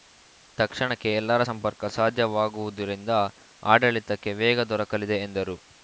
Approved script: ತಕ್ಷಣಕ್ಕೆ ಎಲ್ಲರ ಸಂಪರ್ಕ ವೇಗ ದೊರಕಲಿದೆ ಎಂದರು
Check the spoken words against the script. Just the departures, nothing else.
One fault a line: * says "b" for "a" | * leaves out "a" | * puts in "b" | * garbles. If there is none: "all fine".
* puts in "ಸಾಧ್ಯವಾಗುವುದರಿಂದ ಆಡಳಿತಕ್ಕೆ"